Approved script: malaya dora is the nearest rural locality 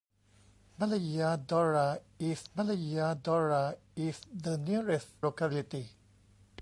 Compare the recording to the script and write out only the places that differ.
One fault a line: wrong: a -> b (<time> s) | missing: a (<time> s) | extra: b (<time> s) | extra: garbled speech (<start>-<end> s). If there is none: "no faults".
extra: malaya dora is (2.6 s)
missing: rural (5.1 s)